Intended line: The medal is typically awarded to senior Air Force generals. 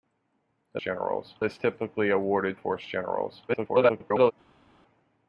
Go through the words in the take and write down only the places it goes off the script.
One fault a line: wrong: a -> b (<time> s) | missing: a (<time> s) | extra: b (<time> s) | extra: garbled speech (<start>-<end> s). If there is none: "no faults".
wrong: medal -> generals (0.8 s)
missing: to senior Air (2.6 s)
extra: garbled speech (3.5-4.3 s)